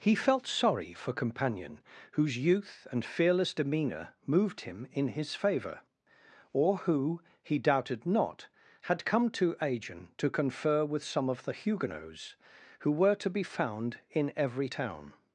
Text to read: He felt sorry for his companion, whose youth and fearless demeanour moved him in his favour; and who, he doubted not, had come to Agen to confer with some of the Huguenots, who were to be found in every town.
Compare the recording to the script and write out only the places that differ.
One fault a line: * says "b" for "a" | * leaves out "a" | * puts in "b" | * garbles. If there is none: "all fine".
* leaves out "his"
* says "or" for "and"